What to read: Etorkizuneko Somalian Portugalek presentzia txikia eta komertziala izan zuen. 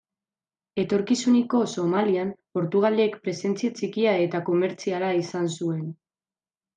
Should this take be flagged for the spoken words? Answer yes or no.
no